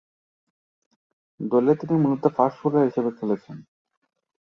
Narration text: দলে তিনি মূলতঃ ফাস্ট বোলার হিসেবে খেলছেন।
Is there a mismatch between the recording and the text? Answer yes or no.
no